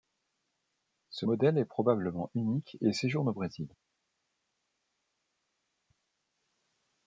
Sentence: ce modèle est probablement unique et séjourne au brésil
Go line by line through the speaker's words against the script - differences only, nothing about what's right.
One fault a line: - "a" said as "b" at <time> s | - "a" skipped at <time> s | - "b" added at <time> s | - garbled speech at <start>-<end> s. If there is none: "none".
none